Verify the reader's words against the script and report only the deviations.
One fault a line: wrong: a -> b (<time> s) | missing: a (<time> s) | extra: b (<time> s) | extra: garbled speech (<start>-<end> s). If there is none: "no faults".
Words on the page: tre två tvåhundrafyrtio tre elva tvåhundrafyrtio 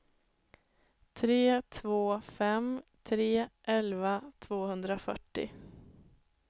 wrong: tvåhundrafyrtio -> fem (2.2 s)